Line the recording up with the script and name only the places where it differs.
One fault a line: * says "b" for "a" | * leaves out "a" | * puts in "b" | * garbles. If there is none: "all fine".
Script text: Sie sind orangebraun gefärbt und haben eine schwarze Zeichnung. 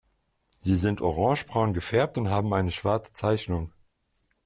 all fine